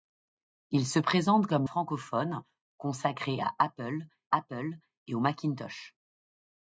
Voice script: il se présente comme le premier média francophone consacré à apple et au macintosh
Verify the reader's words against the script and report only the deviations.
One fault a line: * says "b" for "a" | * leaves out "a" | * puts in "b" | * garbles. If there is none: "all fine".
* leaves out "le premier média"
* puts in "apple"